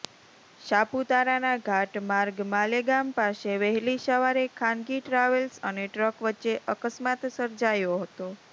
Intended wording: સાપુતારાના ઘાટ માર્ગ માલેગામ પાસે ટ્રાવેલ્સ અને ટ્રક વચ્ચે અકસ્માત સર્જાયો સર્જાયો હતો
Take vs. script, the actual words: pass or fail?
fail